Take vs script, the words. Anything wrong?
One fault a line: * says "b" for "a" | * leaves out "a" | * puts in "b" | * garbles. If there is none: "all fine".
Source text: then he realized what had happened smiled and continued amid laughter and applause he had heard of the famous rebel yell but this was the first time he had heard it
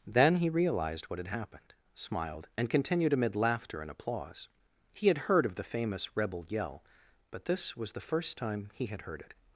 all fine